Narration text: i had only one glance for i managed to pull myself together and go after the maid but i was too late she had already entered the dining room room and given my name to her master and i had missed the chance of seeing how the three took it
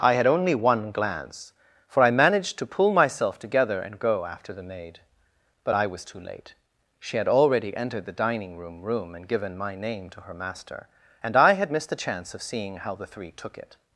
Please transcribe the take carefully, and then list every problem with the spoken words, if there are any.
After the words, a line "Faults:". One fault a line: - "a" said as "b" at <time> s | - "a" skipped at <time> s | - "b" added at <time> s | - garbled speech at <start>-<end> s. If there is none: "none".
i had only one glance for i managed to pull myself together and go after the maid but i was too late she had already entered the dining room room and given my name to her master and i had missed the chance of seeing how the three took it
Faults:
none